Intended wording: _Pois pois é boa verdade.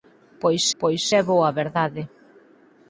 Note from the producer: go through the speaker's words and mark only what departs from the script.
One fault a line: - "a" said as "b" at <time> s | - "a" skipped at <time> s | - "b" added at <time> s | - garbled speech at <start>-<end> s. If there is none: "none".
none